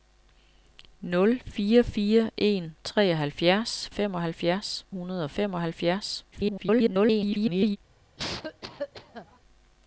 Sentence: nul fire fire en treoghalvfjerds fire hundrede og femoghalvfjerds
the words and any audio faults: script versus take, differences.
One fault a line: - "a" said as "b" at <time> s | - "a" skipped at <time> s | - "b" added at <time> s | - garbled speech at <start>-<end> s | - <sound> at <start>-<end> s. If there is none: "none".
- "fire" said as "femoghalvfjerds" at 3.9 s
- garbled speech at 6.3-7.8 s
- cough at 8.2-9.4 s